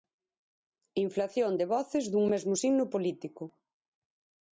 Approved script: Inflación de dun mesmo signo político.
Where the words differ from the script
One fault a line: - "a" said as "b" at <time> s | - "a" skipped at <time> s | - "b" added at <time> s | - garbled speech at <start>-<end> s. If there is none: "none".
- "voces" added at 1.7 s